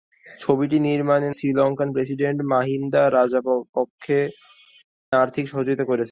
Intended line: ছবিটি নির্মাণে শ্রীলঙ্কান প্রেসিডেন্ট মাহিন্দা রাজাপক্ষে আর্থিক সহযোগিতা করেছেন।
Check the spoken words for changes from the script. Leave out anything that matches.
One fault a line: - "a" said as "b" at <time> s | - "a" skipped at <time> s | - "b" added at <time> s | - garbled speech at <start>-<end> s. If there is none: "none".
none